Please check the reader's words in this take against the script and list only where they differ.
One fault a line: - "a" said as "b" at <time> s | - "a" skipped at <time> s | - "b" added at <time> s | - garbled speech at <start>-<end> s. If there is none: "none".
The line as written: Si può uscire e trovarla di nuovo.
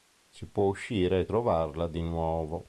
none